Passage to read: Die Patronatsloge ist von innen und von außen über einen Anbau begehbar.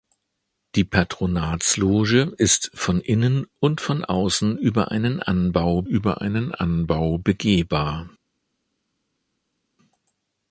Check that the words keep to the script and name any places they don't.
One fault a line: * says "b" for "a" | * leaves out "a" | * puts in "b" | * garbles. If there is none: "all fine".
* puts in "über einen Anbau"